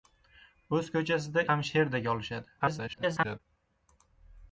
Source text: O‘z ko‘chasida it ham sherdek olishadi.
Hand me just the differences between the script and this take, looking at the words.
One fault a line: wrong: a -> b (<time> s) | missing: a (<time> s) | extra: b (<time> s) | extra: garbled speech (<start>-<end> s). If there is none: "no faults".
missing: it (1.4 s)
extra: garbled speech (2.6-3.4 s)